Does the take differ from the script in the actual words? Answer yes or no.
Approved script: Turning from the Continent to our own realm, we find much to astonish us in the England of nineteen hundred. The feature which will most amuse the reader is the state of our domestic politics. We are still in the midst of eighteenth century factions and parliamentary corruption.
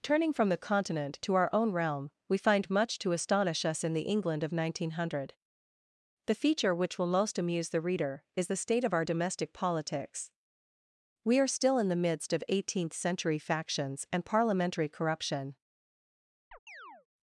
no